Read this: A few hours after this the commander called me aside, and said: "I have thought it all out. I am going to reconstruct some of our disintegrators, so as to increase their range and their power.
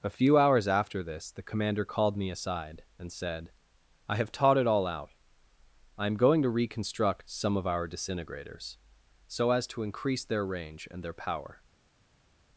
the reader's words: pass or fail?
fail